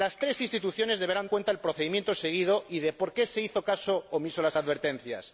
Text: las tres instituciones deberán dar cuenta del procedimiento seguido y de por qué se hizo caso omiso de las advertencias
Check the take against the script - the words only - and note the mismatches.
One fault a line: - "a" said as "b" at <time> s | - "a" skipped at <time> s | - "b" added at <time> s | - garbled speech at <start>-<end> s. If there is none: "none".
- "dar" skipped at 1.3 s